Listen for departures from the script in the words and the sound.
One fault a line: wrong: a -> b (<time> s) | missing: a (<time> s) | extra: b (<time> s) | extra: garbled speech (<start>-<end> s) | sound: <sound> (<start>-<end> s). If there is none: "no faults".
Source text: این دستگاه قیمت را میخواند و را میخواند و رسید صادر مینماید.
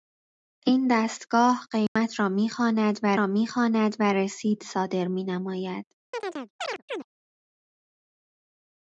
sound: dropout (1.9-2.0 s)
sound: chirp (6.1-7.1 s)